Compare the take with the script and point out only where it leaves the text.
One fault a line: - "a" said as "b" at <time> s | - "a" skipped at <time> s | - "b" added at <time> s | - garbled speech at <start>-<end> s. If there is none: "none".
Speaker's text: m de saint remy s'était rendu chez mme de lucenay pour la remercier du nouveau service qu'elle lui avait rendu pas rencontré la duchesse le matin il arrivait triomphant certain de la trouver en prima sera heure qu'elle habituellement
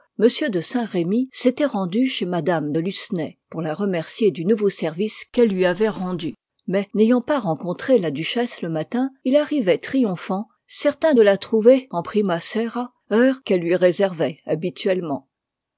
- "mais n'ayant" added at 6.7 s
- "lui réservait" added at 13.6 s